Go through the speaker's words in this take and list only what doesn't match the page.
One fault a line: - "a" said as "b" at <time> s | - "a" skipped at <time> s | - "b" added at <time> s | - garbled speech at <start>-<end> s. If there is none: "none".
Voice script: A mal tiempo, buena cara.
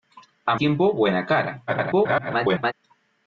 - "mal" skipped at 0.6 s
- garbled speech at 1.7-2.7 s